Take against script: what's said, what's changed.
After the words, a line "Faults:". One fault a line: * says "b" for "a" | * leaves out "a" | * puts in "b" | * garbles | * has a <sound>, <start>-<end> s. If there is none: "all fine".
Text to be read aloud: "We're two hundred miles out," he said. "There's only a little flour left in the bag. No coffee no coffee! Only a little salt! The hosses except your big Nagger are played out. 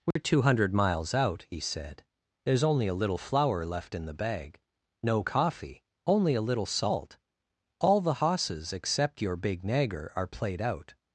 "We're two hundred miles out," he said. "There's only a little flour left in the bag. No coffee! Only a little salt! All the hosses except your big Nagger are played out.
Faults:
* has a dropout, 0.1-0.2 s
* leaves out "no coffee"
* puts in "All"